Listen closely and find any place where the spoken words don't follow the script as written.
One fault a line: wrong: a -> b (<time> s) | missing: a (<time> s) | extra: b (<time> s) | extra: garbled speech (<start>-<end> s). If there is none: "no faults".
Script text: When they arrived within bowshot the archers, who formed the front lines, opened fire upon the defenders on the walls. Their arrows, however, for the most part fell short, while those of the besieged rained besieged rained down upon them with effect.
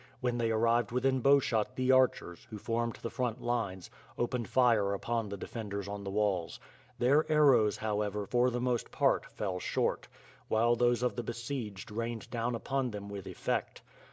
missing: besieged rained (12.3 s)